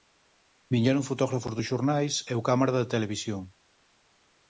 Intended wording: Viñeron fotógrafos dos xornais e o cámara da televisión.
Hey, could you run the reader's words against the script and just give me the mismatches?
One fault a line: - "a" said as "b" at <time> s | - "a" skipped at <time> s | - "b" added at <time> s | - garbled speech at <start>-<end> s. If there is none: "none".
none